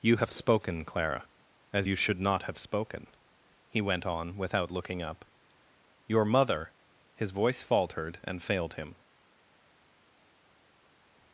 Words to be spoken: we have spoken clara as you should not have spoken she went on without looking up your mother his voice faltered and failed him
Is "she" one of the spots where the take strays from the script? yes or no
yes